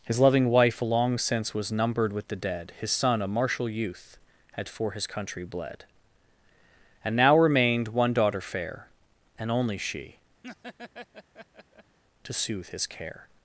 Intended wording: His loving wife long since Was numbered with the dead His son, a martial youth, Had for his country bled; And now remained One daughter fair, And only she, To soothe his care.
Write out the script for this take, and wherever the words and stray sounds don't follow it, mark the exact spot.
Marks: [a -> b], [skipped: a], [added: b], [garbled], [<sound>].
His loving wife long since Was numbered with the dead His son, a martial youth, Had for his country bled; And now remained One daughter fair, And only she, [laugh] To soothe his care.